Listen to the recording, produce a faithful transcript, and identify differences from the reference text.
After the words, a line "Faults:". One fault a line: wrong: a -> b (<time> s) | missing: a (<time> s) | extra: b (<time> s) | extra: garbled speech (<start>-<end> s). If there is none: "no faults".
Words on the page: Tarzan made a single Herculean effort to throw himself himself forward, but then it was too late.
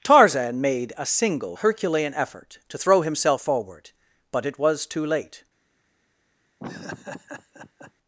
Tarzan made a single Herculean effort to throw himself forward, but it was too late.
Faults:
missing: himself (3.4 s)
missing: then (4.4 s)